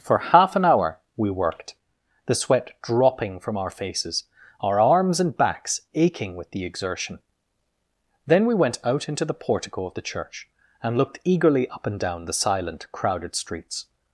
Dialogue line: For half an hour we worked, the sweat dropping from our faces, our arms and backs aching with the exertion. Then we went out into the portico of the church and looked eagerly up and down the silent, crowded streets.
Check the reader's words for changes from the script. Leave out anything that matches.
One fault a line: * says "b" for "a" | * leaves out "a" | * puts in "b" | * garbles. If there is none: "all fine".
all fine